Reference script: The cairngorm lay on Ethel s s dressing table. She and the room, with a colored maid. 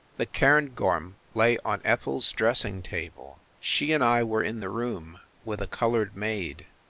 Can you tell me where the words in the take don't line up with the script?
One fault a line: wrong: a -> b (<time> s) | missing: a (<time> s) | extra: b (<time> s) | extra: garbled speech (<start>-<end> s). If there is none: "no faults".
missing: s (2.3 s)
extra: I were in (4.0 s)